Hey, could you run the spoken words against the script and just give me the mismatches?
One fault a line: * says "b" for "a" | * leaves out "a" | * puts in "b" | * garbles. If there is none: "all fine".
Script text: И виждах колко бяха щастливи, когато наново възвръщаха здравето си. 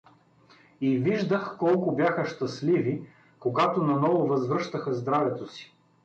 all fine